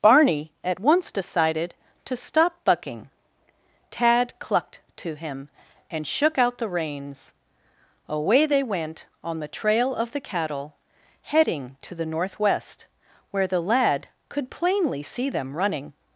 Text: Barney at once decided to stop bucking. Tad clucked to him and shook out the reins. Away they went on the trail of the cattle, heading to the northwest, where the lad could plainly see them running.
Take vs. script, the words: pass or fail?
pass